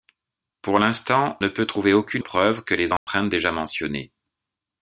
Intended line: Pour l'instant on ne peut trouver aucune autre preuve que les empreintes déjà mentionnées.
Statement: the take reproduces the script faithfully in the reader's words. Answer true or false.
false